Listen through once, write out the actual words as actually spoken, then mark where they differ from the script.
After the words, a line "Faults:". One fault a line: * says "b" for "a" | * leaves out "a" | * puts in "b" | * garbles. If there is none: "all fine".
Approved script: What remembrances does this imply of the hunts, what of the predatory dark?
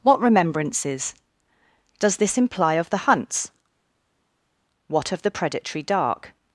What remembrances does this imply of the hunts, what of the predatory dark?
Faults:
all fine